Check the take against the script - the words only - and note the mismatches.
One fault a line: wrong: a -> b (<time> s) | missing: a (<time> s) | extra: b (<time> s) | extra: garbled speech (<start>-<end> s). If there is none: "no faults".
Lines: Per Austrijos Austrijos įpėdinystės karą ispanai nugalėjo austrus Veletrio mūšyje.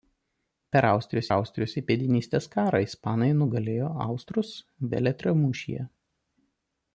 no faults